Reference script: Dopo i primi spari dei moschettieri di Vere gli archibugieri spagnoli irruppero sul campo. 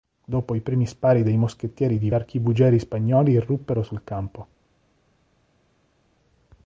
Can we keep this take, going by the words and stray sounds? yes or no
no